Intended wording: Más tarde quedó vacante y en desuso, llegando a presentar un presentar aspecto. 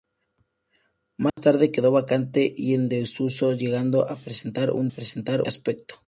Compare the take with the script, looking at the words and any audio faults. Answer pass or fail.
fail